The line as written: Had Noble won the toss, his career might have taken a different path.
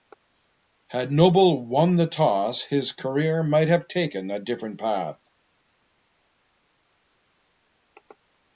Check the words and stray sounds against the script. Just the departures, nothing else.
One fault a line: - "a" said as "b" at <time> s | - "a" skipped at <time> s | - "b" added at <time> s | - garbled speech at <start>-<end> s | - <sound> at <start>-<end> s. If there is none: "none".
none